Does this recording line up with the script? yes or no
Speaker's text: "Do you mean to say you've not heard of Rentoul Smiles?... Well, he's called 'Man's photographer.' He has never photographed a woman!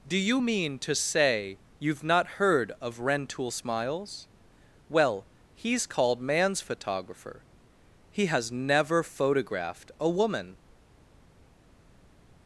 yes